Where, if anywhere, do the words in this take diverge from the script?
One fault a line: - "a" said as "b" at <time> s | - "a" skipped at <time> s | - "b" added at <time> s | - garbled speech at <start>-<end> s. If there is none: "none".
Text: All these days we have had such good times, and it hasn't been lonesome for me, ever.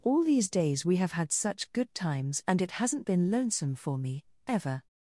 none